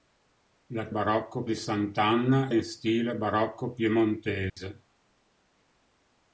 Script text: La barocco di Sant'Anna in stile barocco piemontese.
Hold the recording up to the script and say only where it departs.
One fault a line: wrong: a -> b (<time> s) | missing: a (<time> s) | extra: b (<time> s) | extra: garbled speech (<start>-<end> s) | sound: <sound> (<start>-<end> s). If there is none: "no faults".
sound: dropout (4.5-4.6 s)